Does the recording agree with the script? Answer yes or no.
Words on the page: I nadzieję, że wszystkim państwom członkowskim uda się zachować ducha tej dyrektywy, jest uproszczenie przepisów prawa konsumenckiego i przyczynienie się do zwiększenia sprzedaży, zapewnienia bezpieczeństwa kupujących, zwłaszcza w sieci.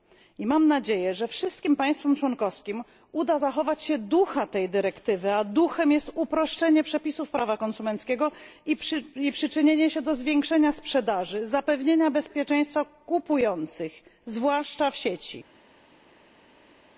no